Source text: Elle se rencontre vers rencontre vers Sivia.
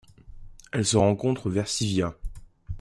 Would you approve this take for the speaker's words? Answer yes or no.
no